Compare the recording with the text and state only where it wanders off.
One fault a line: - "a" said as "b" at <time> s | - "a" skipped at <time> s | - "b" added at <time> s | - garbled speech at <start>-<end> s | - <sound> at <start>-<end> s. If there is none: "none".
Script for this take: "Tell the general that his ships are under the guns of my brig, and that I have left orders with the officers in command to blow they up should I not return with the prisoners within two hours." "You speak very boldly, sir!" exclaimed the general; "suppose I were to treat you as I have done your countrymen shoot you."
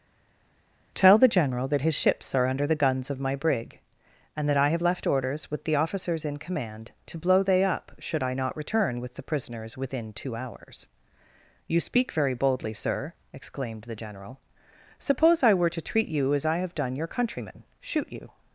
none